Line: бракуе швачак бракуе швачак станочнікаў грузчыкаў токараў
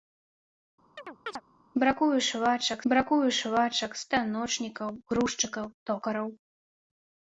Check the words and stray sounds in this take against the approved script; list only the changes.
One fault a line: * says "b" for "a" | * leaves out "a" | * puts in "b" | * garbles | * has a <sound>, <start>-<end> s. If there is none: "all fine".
* has a chirp, 1.0-1.4 s